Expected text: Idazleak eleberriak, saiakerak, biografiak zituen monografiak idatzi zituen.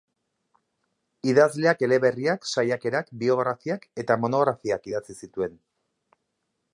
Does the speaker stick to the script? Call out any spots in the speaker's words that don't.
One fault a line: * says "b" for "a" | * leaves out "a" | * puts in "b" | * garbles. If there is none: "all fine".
* says "eta" for "zituen"